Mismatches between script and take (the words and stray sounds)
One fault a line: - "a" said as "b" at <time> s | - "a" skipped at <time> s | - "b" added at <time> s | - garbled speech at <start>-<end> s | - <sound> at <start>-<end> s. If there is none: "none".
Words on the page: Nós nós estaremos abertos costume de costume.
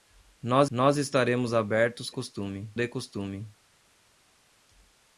none